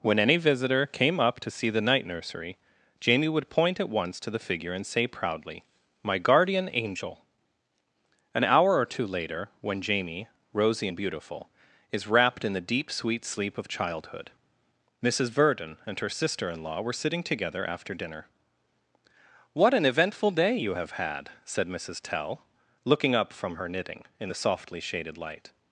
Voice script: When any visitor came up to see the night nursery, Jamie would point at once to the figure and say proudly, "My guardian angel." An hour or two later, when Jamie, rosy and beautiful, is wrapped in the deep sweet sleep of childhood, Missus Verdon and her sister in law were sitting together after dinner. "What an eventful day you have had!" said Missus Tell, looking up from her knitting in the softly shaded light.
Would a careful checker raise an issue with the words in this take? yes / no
no